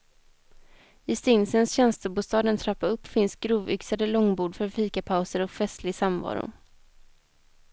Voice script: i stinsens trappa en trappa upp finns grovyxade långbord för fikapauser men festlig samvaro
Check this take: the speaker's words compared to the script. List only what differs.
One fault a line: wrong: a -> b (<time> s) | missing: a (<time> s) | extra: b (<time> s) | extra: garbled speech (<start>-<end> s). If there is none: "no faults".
wrong: trappa -> tjänstebostad (1.7 s)
wrong: men -> och (5.4 s)